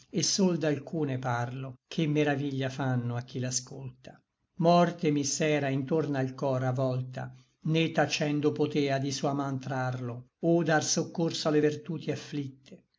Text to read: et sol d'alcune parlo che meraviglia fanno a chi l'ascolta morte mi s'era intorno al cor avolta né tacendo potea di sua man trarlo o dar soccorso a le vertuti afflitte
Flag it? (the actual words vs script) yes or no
no